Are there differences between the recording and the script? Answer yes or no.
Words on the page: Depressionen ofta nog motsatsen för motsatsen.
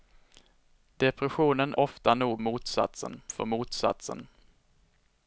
no